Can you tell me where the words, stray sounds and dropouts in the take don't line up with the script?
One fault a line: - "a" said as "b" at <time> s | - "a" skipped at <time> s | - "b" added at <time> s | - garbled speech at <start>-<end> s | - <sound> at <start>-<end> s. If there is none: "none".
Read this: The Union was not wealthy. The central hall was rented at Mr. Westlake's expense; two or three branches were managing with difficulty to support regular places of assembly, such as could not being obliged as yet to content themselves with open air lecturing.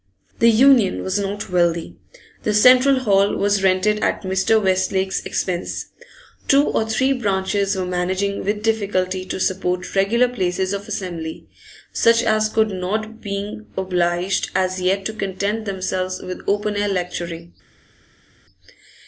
none